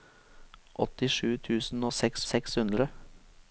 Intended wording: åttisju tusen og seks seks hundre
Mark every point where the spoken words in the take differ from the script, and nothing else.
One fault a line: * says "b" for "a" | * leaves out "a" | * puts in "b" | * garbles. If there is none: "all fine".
all fine